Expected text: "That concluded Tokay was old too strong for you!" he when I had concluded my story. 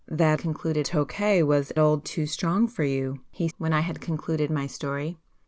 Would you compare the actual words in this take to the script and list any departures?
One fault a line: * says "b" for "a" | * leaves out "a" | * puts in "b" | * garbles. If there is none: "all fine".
all fine